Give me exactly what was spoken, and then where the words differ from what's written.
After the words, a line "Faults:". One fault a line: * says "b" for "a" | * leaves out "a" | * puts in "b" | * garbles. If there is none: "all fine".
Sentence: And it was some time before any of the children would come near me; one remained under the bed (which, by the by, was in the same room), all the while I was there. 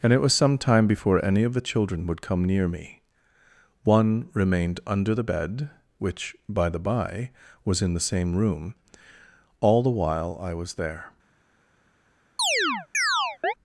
And it was some time before any of the children would come near me; one remained under the bed (which, by the by, was in the same room), all the while I was there.
Faults:
all fine